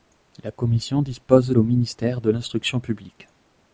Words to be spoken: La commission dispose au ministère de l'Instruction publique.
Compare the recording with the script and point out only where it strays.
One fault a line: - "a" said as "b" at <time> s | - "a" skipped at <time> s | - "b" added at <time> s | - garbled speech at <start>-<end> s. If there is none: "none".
none